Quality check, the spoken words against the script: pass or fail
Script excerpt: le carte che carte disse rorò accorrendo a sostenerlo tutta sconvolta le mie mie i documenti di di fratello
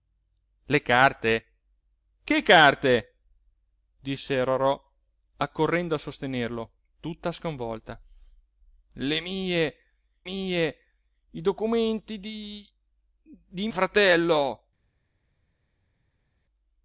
pass